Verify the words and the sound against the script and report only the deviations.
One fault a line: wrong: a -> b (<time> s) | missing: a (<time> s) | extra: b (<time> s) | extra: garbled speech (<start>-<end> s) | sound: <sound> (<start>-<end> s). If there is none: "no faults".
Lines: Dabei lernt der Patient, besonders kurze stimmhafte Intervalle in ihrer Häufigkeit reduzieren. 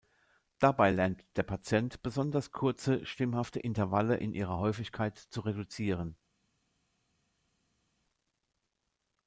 extra: zu (5.2 s)